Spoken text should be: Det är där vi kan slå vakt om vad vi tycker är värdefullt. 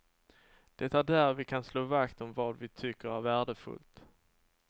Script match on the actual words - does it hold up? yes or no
yes